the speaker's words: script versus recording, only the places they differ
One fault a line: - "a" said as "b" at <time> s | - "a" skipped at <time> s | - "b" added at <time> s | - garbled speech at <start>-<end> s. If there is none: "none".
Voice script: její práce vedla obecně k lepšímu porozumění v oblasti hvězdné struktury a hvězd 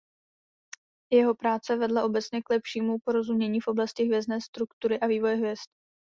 - "její" said as "jeho" at 1.1 s
- "vývoje" added at 5.1 s